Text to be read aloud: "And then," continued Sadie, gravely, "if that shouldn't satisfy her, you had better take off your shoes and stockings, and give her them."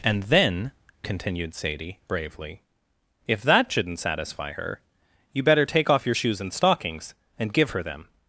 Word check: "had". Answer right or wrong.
wrong